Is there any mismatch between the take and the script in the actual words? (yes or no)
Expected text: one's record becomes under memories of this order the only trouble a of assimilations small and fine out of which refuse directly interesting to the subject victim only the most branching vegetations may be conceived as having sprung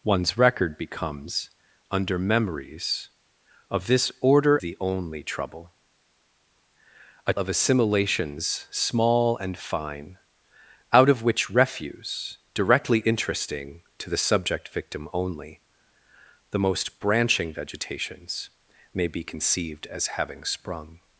no